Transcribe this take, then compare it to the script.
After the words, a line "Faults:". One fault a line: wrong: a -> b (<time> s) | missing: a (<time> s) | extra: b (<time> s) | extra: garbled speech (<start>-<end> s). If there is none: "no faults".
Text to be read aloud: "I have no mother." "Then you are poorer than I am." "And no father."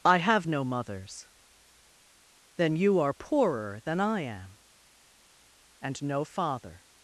"I have no mothers." "Then you are poorer than I am." "And no father."
Faults:
wrong: mother -> mothers (0.6 s)